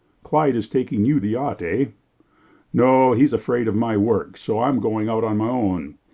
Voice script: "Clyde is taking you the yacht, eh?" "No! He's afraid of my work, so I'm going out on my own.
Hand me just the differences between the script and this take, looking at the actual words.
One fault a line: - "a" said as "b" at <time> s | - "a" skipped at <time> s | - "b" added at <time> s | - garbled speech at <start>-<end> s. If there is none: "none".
none